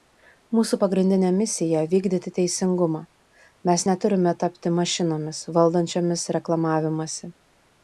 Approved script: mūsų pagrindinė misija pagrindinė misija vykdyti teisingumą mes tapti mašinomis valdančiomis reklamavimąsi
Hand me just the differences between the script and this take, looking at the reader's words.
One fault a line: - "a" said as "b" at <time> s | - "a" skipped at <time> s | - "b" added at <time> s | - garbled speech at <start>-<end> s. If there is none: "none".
- "pagrindinė misija" skipped at 1.8 s
- "neturime" added at 3.9 s